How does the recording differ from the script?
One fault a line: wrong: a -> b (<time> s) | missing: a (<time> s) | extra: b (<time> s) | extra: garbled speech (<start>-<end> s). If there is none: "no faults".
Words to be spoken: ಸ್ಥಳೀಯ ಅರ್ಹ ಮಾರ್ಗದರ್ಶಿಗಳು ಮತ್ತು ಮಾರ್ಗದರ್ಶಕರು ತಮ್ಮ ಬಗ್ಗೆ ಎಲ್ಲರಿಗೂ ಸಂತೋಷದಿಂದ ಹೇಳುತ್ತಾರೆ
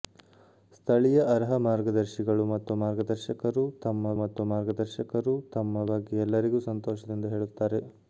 extra: ಮತ್ತು ಮಾರ್ಗದರ್ಶಕರು ತಮ್ಮ (4.2 s)